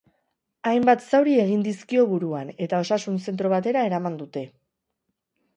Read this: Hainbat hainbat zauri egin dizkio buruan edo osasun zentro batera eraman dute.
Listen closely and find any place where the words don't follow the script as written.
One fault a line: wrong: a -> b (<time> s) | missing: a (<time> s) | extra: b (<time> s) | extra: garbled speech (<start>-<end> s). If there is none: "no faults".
missing: hainbat (1.0 s)
wrong: edo -> eta (2.7 s)